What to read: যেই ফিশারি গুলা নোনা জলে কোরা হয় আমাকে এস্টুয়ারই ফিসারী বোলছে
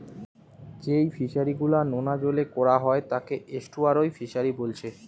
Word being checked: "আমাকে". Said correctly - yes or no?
no